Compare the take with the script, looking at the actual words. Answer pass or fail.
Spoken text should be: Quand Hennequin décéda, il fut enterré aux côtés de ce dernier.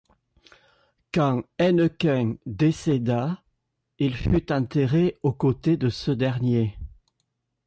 pass